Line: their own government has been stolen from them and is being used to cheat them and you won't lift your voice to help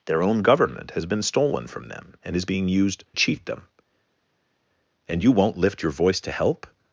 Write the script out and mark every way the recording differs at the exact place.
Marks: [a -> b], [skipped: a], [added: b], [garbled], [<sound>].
their own government has been stolen from them and is being used [skipped: to] cheat them and you won't lift your voice to help